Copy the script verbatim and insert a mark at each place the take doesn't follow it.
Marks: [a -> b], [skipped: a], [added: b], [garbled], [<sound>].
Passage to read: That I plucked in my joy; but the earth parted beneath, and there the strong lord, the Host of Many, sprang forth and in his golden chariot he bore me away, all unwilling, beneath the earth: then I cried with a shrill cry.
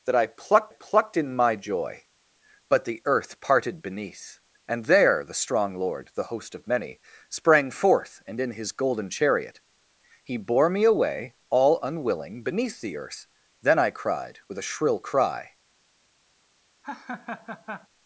That I plucked [added: plucked] in my joy; but the earth parted beneath, and there the strong lord, the Host of Many, sprang forth and in his golden chariot he bore me away, all unwilling, beneath the earth: then I cried with a shrill cry. [laugh]